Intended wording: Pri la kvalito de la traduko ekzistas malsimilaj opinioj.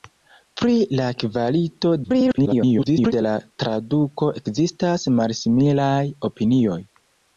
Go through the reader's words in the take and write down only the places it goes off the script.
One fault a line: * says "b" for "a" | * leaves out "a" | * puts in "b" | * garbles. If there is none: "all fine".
* garbles